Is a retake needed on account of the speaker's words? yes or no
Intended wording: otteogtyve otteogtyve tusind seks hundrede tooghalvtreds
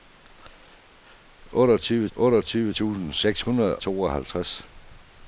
no